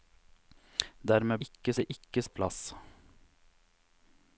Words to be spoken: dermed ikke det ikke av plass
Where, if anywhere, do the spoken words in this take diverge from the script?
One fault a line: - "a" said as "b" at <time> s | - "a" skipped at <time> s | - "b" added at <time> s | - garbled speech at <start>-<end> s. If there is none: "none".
none